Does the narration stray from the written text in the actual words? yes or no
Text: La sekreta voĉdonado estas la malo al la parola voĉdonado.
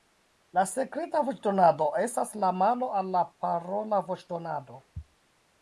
no